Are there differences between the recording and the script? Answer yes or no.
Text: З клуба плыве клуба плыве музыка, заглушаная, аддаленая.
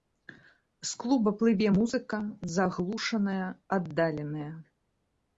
yes